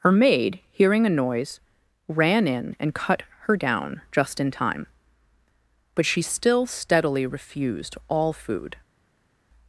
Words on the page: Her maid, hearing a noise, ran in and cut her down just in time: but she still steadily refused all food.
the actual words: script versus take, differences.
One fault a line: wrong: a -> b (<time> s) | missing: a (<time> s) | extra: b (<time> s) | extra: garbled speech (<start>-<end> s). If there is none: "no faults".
no faults